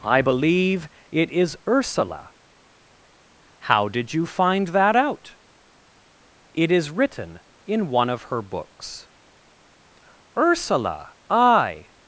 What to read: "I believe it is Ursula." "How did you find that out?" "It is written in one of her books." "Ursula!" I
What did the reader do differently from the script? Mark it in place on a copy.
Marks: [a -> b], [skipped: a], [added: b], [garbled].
"I believe it is Ursula." "How did you find that out?" "It is written in one of her books." "Ursula!" I